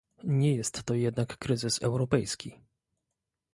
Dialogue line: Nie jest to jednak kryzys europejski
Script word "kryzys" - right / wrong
right